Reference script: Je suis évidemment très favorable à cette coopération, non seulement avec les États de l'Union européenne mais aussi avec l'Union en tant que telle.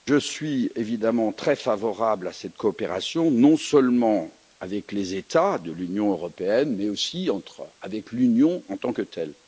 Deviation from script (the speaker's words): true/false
false